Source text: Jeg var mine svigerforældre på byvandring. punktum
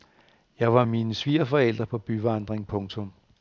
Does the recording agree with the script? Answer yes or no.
yes